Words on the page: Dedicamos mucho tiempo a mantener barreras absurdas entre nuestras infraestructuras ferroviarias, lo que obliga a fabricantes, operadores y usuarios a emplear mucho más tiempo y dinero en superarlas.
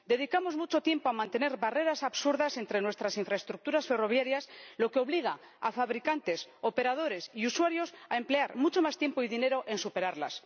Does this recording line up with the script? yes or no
yes